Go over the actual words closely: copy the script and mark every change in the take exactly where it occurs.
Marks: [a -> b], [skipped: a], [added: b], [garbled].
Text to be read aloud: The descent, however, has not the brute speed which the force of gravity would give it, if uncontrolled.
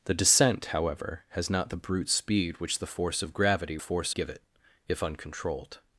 The descent, however, has not the brute speed which the force of gravity [would -> force] give it, if uncontrolled.